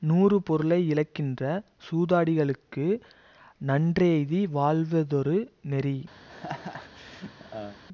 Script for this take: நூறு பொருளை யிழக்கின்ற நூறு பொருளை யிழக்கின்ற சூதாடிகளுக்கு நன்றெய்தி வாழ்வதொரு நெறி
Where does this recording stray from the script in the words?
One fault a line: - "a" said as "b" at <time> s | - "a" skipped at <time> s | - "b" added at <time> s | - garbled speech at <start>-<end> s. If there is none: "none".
- "நூறு பொருளை யிழக்கின்ற" skipped at 1.4 s